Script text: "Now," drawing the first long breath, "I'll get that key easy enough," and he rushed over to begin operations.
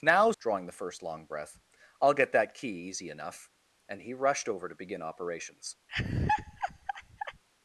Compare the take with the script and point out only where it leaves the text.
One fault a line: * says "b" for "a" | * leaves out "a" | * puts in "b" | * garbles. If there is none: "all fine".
all fine